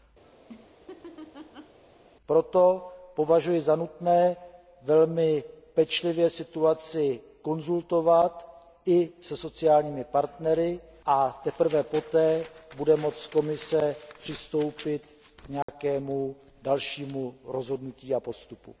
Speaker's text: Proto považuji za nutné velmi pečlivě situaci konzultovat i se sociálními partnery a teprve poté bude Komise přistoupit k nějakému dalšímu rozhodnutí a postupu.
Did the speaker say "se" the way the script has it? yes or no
yes